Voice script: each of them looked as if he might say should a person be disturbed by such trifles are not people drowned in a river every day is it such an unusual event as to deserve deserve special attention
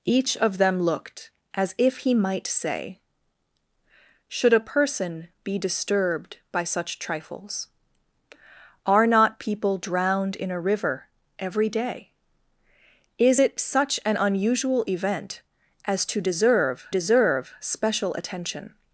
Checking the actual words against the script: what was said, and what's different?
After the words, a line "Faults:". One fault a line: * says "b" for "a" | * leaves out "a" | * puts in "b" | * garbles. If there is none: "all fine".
each of them looked as if he might say should a person be disturbed by such trifles are not people drowned in a river every day is it such an unusual event as to deserve deserve special attention
Faults:
all fine